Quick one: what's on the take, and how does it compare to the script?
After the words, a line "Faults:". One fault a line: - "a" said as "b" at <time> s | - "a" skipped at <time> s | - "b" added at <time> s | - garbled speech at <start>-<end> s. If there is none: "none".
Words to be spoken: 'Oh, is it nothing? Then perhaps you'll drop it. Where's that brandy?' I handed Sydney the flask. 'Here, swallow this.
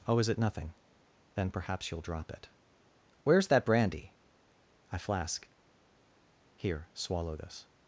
'Oh, is it nothing? Then perhaps you'll drop it. Where's that brandy?' I flask. 'Here, swallow this.
Faults:
- "handed Sydney the" skipped at 5.0 s